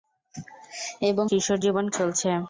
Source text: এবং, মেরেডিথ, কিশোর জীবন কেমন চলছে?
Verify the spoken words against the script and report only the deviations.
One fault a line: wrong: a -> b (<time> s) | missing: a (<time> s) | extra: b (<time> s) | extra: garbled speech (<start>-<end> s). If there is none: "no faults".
missing: মেরেডিথ (1.2 s)
missing: কেমন (1.9 s)